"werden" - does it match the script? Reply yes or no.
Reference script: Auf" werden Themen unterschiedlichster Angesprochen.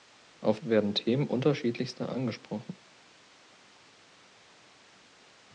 yes